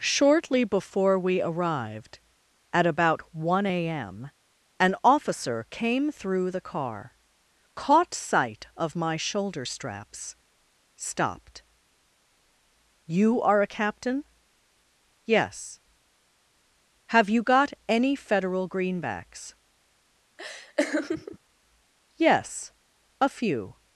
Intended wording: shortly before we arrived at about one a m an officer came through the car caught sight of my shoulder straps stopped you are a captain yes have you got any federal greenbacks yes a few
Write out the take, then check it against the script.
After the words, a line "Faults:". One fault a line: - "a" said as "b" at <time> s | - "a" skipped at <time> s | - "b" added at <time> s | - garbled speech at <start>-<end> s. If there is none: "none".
shortly before we arrived at about one a m an officer came through the car caught sight of my shoulder straps stopped you are a captain yes have you got any federal greenbacks yes a few
Faults:
none